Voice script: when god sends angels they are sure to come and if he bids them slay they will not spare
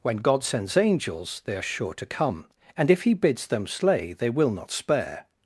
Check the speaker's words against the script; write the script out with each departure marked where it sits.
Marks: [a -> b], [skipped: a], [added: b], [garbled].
when god sends angels they are sure to come and if he bids them slay they will not spare